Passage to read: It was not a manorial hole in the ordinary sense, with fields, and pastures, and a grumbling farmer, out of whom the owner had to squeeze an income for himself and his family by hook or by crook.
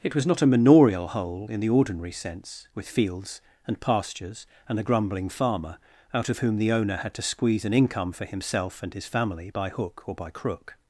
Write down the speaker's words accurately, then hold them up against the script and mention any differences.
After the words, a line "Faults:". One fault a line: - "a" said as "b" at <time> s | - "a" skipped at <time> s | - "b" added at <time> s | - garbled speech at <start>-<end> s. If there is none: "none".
It was not a manorial hole in the ordinary sense, with fields, and pastures, and a grumbling farmer, out of whom the owner had to squeeze an income for himself and his family by hook or by crook.
Faults:
none